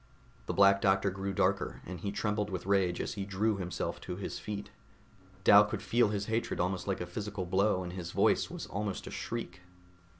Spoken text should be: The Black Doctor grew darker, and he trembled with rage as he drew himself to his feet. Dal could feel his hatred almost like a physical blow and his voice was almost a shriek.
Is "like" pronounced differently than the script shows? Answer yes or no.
no